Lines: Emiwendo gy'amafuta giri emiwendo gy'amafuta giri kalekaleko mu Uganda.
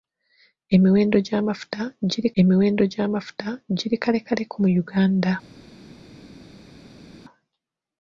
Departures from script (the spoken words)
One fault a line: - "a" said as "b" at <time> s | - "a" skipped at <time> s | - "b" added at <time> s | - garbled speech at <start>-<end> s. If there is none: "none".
none